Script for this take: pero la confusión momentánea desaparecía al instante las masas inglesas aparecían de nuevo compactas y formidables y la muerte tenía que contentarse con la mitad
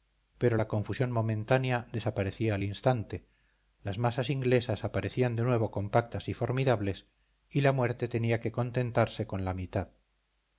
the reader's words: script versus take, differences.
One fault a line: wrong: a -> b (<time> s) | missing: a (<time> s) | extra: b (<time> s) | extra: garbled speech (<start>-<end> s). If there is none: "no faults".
no faults